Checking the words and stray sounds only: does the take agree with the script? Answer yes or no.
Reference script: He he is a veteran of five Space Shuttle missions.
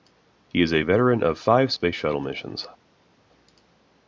no